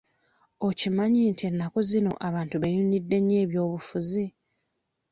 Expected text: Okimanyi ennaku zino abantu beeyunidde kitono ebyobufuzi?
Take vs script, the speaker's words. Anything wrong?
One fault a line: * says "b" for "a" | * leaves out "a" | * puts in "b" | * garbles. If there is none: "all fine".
* puts in "nti"
* says "nnyo" for "kitono"